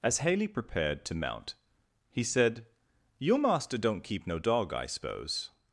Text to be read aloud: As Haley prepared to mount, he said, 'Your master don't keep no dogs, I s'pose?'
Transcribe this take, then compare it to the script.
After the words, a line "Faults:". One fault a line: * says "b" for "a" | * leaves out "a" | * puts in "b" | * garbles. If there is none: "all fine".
As Haley prepared to mount, he said, 'Your master don't keep no dog, I s'pose?'
Faults:
* says "dog" for "dogs"